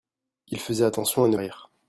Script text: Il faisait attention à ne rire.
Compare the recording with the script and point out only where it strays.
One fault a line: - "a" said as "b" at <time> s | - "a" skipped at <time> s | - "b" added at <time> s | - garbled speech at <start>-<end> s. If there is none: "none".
none